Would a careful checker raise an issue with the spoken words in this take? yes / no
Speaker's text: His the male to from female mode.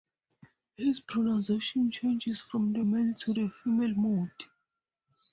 yes